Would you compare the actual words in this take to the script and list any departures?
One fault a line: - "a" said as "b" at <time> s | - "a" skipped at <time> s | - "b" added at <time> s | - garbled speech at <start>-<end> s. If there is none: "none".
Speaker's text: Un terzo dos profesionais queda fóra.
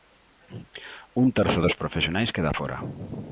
none